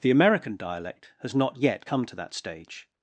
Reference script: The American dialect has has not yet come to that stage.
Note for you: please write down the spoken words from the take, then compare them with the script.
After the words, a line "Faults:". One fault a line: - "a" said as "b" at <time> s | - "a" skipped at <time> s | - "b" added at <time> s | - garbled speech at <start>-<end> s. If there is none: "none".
The American dialect has not yet come to that stage.
Faults:
- "has" skipped at 1.4 s